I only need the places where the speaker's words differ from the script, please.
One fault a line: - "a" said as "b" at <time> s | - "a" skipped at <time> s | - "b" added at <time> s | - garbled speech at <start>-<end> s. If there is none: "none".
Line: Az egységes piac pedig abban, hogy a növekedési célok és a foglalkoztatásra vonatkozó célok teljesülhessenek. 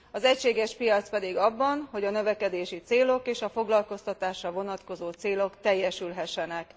none